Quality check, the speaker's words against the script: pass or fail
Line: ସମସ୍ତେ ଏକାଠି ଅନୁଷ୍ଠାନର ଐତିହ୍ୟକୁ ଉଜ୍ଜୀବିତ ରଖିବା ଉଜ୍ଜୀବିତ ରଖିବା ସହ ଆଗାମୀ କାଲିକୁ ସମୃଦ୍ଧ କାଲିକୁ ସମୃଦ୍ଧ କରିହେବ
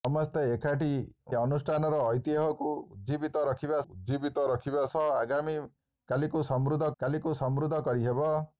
pass